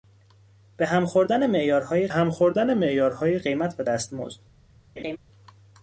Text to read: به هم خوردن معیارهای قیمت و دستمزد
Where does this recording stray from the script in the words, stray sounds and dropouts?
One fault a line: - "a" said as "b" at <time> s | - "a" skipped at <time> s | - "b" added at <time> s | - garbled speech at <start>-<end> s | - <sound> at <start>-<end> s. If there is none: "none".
- "هم خوردن معیارهای" added at 2.1 s
- laugh at 5.0-5.2 s